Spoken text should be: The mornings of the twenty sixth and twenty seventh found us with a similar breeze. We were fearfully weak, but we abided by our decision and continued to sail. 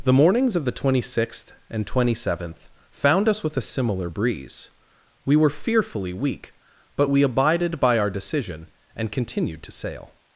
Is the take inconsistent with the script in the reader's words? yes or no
no